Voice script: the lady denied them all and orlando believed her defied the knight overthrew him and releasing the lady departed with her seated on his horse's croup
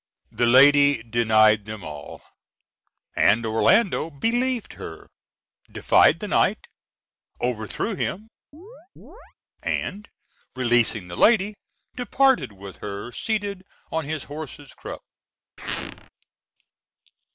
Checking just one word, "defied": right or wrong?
right